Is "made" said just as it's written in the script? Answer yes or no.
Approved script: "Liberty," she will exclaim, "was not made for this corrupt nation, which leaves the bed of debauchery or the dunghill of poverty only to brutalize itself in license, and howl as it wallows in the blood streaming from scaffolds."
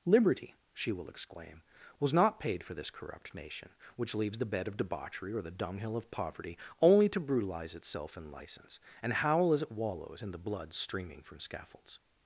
no